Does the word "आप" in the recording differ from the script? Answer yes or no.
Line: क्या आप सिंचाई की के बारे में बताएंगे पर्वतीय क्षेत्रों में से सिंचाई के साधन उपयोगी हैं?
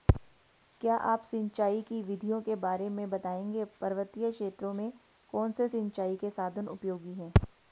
no